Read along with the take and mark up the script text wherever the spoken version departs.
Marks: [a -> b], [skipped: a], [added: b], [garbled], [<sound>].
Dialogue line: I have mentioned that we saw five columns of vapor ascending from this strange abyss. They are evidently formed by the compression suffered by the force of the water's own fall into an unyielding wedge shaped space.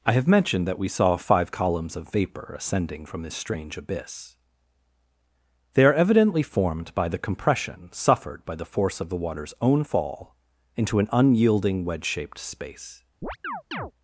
I have mentioned that we saw five columns of vapor ascending from this strange abyss. They are evidently formed by the compression suffered by the force of the water's own fall into an unyielding wedge shaped space. [chirp]